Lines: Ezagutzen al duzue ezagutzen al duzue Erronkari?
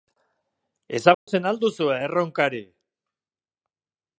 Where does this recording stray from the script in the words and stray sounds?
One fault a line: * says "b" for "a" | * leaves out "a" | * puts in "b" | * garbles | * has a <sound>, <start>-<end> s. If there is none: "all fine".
* has a dropout, 1.1-1.3 s
* leaves out "ezagutzen al duzue"